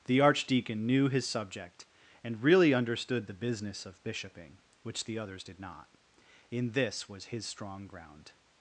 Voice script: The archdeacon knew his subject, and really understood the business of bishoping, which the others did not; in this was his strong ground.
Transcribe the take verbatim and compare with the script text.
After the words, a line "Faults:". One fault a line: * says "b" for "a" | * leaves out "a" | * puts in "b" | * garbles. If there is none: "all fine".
The archdeacon knew his subject, and really understood the business of bishoping, which the others did not; in this was his strong ground.
Faults:
all fine